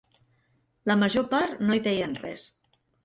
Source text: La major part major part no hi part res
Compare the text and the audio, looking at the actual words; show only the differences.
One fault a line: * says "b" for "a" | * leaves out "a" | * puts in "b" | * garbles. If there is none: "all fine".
* leaves out "major part"
* says "deien" for "part"